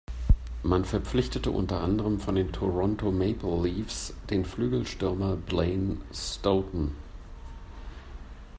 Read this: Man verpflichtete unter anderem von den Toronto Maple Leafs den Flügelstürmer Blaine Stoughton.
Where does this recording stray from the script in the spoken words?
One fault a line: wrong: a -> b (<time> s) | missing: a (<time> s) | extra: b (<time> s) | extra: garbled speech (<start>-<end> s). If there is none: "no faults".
no faults